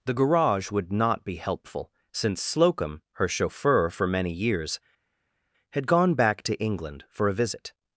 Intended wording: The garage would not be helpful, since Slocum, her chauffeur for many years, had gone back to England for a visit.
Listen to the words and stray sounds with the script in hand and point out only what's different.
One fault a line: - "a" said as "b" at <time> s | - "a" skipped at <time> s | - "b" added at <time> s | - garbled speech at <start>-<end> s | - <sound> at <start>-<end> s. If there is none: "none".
none